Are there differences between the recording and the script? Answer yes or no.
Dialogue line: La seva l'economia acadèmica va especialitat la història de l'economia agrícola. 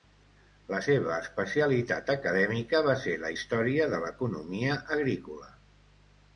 yes